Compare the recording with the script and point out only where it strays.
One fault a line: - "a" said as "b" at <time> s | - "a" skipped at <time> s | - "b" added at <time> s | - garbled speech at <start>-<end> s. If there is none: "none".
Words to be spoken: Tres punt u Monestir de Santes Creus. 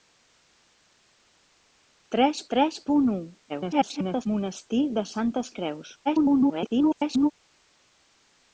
- "tres" added at 2.5 s
- garbled speech at 3.5-4.3 s
- garbled speech at 6.1-7.3 s